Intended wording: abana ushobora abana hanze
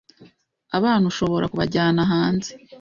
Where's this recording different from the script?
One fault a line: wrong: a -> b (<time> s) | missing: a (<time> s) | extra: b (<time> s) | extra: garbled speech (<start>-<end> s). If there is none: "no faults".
wrong: abana -> kubajyana (1.5 s)